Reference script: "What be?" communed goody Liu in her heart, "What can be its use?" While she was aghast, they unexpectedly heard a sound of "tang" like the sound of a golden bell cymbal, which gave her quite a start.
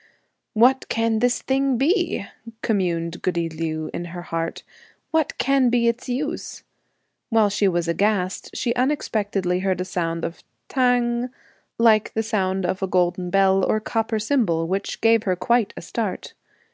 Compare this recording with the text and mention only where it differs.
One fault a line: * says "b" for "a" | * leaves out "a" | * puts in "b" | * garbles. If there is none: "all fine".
* puts in "can this thing"
* says "she" for "they"
* puts in "or copper"